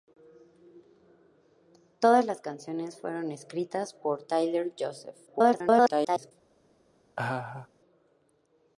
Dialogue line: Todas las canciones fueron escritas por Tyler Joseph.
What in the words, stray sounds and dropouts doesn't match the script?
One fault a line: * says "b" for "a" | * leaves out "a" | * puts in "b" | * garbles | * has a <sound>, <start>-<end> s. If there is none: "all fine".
* garbles
* has a laugh, 7.2-7.7 s